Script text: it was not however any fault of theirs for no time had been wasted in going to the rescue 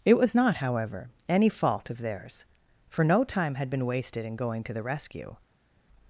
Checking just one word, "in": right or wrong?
right